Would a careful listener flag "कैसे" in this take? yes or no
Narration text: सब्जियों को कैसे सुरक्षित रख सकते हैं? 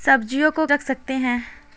yes